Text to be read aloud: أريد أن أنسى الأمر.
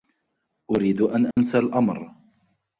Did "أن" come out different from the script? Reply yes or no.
no